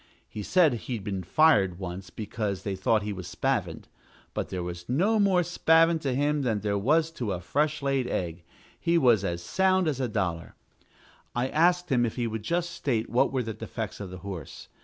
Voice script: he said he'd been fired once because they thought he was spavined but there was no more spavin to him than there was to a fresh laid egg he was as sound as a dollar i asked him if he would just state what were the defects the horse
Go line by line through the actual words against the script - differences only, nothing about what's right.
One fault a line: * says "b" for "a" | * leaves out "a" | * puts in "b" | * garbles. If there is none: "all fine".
* puts in "of"